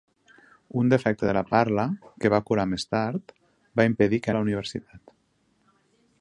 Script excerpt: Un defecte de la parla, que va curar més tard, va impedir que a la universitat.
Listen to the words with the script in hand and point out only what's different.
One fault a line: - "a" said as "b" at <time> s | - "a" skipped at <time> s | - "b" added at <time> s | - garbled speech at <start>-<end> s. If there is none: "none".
none